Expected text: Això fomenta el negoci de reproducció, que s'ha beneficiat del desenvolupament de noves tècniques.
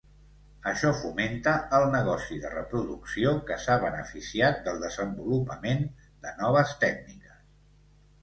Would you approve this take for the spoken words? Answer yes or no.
yes